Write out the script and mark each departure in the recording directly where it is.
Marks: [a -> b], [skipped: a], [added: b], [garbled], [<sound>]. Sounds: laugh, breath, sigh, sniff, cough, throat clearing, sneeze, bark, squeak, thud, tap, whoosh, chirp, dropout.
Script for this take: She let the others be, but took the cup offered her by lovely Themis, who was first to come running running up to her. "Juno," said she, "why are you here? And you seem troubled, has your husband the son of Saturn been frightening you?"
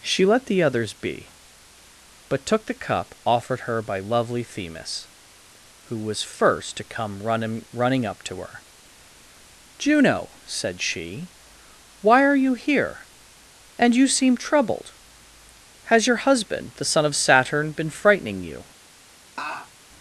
She let the others be, but took the cup offered her by lovely Themis, who was first to come running running up to her. "Juno," said she, "why are you here? And you seem troubled, has your husband the son of Saturn been frightening you?" [laugh]